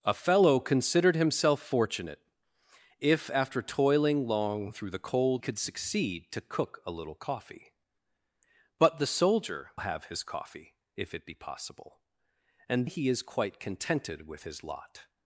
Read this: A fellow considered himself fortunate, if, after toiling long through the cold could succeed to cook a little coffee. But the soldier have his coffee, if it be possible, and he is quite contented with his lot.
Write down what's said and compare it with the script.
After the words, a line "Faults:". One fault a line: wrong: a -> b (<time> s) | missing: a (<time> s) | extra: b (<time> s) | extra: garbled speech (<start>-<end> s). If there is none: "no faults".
A fellow considered himself fortunate, if, after toiling long through the cold could succeed to cook a little coffee. But the soldier have his coffee, if it be possible, and he is quite contented with his lot.
Faults:
no faults